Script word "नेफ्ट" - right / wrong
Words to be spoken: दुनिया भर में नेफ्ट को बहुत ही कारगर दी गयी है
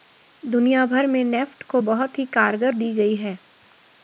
right